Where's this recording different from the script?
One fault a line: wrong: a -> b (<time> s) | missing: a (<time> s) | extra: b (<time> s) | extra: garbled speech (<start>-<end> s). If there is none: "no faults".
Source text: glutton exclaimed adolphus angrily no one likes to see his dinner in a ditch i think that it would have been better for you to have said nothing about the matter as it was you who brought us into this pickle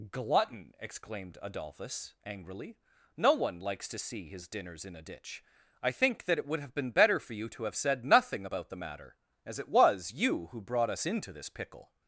wrong: dinner -> dinners (4.5 s)